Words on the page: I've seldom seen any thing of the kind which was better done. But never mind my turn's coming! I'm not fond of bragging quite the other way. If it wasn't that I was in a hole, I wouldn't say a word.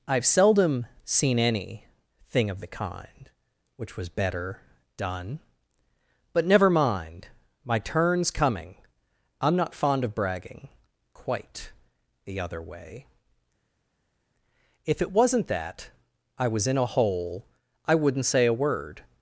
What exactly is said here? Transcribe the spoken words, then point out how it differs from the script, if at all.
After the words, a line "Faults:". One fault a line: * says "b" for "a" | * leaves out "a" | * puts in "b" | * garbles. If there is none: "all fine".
I've seldom seen any thing of the kind which was better done. But never mind my turn's coming! I'm not fond of bragging quite the other way. If it wasn't that I was in a hole, I wouldn't say a word.
Faults:
all fine